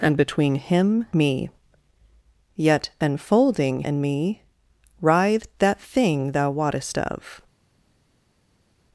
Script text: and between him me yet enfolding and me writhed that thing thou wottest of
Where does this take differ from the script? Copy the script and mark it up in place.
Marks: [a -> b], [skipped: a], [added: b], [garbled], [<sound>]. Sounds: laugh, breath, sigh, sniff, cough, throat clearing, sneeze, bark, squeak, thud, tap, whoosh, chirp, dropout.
and between him me yet enfolding and me writhed that thing thou wottest of